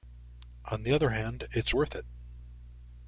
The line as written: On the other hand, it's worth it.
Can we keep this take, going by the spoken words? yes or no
yes